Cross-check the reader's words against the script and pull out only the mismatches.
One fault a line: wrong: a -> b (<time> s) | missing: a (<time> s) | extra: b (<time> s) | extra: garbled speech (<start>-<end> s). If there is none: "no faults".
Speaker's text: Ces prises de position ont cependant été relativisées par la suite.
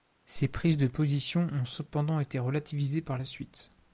no faults